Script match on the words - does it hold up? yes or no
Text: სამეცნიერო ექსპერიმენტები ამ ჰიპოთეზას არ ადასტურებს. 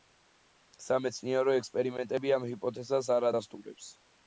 yes